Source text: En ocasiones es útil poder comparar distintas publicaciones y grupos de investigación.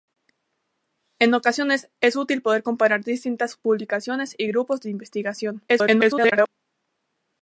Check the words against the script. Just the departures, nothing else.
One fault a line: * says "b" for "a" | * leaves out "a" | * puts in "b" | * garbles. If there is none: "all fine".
* garbles